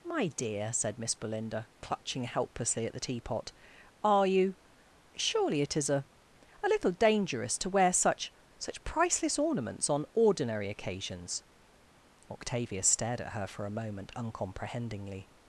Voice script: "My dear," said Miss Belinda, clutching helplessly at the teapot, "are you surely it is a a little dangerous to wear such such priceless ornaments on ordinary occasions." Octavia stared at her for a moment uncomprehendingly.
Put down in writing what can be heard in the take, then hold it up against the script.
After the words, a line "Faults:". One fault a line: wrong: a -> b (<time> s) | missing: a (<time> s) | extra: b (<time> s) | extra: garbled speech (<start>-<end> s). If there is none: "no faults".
"My dear," said Miss Belinda, clutching helplessly at the teapot, "are you surely it is a a little dangerous to wear such such priceless ornaments on ordinary occasions." Octavia stared at her for a moment uncomprehendingly.
Faults:
no faults